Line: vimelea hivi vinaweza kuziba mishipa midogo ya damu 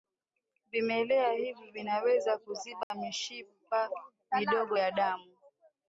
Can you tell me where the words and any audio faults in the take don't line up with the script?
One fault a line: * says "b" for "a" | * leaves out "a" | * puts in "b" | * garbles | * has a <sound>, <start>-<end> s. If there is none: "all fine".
* has a dropout, 2.8-2.9 s